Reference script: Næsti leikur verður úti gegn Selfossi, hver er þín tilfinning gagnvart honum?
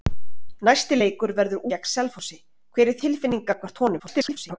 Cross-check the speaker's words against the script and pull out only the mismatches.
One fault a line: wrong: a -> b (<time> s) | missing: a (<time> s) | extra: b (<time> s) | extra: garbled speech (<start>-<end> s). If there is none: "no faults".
missing: úti (1.7 s)
missing: þín (3.0 s)
extra: garbled speech (4.0-4.6 s)